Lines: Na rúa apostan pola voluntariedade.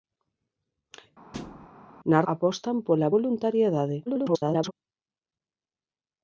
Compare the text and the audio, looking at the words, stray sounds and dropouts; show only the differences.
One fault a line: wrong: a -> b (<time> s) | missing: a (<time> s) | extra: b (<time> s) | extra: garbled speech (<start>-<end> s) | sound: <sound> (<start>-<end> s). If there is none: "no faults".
sound: thud (1.3-1.7 s)
missing: rúa (2.2 s)
extra: garbled speech (4.1-4.7 s)